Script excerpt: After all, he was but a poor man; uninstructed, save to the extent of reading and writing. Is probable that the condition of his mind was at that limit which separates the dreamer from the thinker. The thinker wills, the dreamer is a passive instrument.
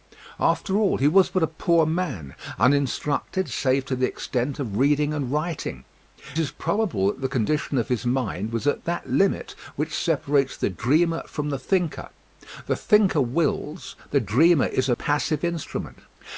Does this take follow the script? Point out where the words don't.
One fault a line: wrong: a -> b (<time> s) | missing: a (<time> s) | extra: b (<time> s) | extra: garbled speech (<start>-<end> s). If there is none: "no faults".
no faults